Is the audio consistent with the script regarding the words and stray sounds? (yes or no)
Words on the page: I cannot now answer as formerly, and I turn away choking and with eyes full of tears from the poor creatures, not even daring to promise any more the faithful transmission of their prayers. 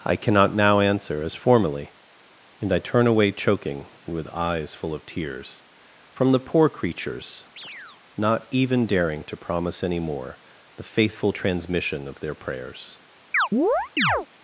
no